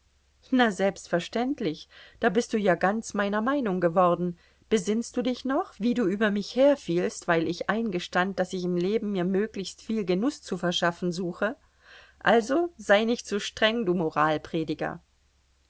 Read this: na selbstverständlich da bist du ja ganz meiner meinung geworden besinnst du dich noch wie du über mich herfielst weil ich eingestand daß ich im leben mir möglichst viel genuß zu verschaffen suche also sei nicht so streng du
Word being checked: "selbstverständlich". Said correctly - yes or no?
yes